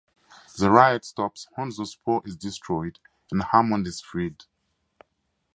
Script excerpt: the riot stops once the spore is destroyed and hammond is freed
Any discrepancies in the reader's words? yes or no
no